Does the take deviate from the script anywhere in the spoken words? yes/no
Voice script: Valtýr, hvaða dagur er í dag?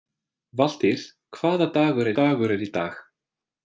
yes